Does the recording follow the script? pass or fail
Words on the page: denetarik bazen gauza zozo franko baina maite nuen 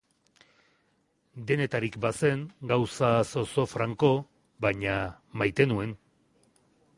pass